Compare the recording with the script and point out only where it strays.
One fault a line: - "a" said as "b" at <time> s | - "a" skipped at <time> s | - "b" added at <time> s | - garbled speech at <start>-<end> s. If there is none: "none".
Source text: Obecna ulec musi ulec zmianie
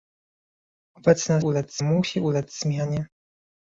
none